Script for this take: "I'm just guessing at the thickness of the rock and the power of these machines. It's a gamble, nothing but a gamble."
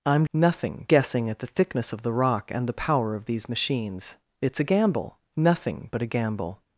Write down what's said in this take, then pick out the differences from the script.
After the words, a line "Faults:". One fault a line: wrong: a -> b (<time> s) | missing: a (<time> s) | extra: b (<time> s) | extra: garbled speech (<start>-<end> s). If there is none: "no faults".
"I'm nothing guessing at the thickness of the rock and the power of these machines. It's a gamble, nothing but a gamble."
Faults:
wrong: just -> nothing (0.3 s)